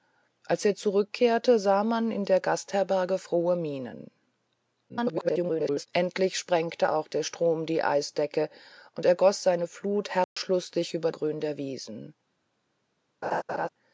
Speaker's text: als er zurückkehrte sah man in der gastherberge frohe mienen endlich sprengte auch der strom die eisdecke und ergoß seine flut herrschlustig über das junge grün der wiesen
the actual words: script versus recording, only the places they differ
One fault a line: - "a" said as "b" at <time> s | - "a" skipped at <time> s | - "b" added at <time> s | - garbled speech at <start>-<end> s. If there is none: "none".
- garbled speech at 4.9-5.9 s
- "das junge" skipped at 11.1 s